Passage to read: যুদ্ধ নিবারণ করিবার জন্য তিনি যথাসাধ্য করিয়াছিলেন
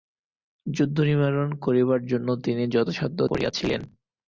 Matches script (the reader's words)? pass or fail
pass